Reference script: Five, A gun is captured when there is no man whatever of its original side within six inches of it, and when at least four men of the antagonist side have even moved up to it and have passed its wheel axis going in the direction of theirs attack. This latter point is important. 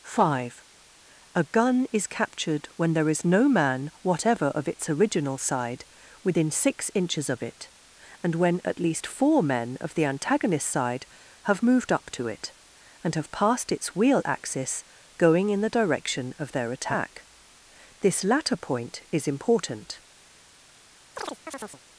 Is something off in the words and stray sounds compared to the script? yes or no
yes